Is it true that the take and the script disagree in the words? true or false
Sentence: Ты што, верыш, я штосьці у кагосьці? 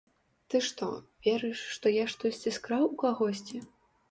true